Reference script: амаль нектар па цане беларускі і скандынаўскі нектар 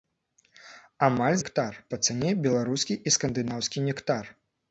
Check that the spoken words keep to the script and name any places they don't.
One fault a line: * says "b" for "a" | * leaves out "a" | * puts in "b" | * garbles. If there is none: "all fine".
all fine